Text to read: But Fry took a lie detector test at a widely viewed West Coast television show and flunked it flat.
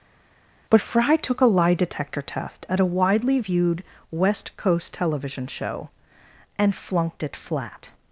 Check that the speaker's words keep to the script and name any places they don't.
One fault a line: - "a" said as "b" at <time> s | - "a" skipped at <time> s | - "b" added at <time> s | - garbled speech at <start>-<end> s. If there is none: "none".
none